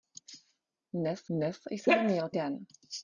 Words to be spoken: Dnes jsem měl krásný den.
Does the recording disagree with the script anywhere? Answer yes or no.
yes